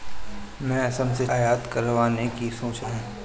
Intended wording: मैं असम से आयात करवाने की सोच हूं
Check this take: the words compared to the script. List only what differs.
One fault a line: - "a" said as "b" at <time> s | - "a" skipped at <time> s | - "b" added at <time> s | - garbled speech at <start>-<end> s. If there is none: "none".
none